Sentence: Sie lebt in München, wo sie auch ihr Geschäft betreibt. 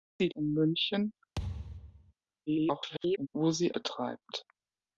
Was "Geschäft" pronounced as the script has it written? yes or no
no